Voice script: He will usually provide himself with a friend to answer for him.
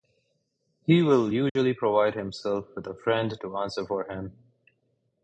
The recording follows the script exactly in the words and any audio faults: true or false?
false